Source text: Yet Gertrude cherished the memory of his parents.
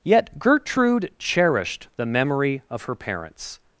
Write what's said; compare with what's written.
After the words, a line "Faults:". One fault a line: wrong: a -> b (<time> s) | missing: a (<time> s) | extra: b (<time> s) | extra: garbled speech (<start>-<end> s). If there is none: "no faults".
Yet Gertrude cherished the memory of her parents.
Faults:
wrong: his -> her (2.8 s)